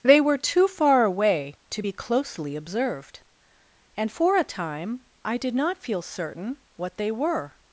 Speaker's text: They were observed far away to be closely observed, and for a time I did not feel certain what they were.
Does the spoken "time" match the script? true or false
true